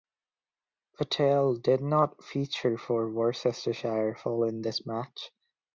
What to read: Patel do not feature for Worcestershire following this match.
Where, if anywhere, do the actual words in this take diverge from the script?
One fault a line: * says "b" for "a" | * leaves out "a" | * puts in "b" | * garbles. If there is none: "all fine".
* says "did" for "do"